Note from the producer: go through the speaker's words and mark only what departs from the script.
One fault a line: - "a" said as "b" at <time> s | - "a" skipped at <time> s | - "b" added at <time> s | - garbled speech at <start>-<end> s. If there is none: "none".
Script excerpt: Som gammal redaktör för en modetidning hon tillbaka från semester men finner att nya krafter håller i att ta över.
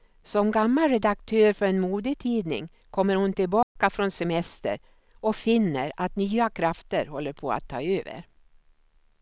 - "kommer" added at 2.9 s
- "men" said as "och" at 5.1 s
- "i" said as "på" at 7.3 s